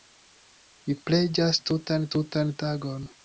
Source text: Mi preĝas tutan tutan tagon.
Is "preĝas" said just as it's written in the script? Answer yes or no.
yes